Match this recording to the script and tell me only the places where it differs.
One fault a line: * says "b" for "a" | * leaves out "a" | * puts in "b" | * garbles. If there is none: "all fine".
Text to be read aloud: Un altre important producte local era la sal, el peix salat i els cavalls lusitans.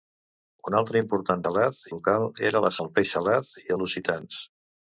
* says "salat" for "producte"
* leaves out "sal"
* leaves out "els cavalls"